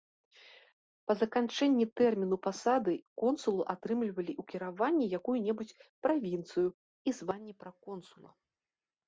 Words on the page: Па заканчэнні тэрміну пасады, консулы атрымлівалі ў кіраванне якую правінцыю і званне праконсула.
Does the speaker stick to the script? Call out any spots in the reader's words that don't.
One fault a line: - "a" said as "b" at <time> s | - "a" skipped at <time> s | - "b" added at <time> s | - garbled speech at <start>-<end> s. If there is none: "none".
- "небудзь" added at 5.5 s